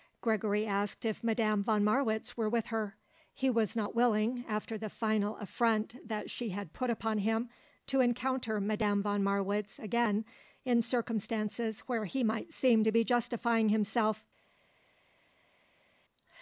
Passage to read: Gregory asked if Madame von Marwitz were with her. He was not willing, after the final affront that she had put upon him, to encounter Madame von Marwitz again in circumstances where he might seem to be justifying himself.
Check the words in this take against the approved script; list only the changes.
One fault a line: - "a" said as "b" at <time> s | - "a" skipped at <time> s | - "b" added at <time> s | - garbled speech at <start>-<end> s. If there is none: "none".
none